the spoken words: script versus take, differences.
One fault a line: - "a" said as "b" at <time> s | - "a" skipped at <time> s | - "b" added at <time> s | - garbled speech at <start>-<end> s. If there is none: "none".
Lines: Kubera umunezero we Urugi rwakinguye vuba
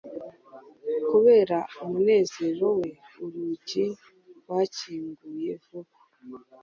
none